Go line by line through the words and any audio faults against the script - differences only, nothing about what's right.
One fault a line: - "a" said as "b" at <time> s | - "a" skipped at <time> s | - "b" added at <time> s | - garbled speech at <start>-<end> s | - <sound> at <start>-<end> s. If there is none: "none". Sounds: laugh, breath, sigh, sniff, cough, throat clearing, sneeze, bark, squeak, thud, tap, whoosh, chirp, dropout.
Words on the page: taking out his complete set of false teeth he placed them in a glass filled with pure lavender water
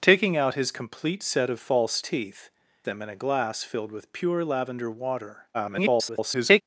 - "he placed" skipped at 2.5 s
- garbled speech at 5.5-6.6 s